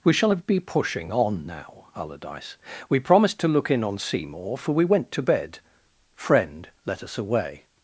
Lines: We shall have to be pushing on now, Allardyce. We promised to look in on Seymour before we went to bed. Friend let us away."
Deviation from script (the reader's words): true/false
true